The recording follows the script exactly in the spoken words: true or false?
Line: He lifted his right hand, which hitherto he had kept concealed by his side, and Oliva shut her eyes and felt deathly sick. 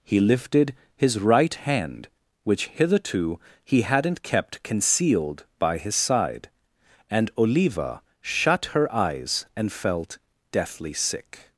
false